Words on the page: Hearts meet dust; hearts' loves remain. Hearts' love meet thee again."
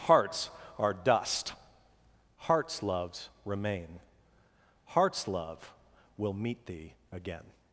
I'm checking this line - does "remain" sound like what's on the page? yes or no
yes